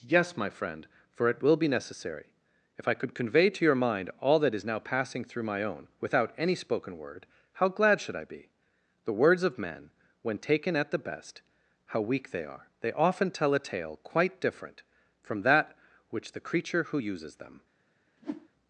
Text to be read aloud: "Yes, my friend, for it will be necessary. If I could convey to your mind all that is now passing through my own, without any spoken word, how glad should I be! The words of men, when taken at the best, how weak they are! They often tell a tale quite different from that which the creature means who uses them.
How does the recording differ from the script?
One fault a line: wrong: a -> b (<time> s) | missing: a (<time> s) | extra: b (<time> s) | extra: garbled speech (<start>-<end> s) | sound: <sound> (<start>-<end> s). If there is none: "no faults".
missing: means (16.9 s)
sound: whoosh (18.2-18.5 s)